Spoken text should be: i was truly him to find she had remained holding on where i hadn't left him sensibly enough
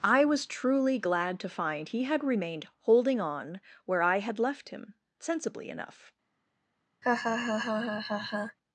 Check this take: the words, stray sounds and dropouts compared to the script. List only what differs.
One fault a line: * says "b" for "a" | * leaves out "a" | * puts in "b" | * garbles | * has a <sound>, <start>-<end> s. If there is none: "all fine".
* says "glad" for "him"
* says "he" for "she"
* says "had" for "hadn't"
* has a laugh, 7.0-8.6 s